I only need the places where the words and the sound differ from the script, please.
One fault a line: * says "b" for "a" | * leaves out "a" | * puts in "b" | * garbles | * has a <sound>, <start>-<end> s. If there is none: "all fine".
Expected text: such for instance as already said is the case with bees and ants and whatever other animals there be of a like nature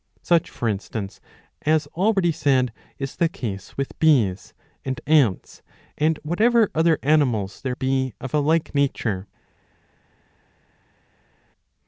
all fine